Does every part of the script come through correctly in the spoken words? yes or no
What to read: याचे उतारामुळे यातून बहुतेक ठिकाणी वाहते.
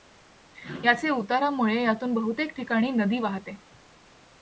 no